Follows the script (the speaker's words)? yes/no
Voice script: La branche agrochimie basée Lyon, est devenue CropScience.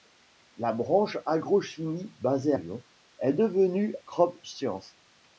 yes